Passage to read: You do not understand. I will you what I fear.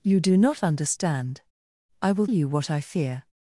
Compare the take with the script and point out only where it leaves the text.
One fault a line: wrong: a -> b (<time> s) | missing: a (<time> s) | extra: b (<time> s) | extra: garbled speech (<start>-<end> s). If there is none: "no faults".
no faults